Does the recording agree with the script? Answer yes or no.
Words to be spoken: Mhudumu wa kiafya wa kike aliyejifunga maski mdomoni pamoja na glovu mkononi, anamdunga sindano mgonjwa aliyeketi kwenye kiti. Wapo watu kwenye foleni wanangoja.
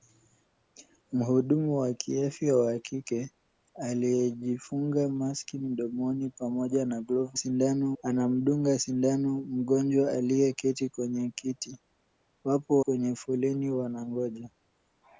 no